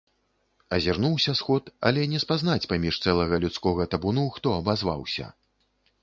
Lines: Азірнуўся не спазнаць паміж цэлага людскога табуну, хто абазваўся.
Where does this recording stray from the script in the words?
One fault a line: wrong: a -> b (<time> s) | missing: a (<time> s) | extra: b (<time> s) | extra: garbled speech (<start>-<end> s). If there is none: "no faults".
extra: сход але (1.4 s)